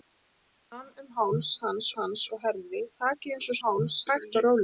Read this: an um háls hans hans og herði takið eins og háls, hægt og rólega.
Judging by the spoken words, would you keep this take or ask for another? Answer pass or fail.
pass